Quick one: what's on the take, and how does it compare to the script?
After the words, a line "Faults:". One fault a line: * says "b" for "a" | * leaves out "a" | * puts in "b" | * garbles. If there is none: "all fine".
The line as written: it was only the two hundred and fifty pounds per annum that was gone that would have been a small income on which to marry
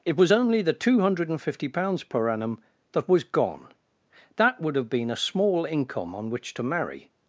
it was only the two hundred and fifty pounds per annum that was gone that would have been a small income on which to marry
Faults:
all fine